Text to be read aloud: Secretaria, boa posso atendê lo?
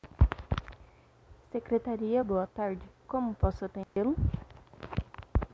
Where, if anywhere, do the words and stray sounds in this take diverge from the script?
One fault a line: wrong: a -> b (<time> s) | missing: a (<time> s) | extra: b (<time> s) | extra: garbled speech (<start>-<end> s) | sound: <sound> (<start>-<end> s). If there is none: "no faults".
extra: tarde Como (2.5 s)
sound: dropout (3.8-4.0 s)